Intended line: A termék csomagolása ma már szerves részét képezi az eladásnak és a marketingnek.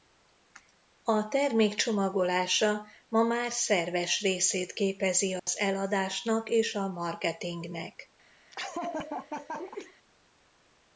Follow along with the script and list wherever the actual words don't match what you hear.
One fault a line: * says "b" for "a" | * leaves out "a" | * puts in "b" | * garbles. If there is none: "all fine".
all fine